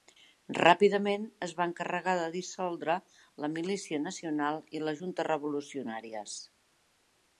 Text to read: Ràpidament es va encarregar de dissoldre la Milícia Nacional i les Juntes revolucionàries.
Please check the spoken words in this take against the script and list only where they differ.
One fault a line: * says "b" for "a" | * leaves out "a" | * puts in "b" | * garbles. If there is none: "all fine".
all fine